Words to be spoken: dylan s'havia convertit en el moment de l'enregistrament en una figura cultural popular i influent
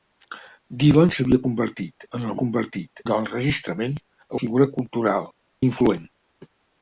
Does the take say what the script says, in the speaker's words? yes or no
no